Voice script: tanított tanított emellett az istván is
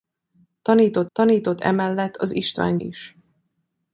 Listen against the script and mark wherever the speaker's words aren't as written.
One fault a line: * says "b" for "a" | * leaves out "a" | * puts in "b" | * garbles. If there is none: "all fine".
all fine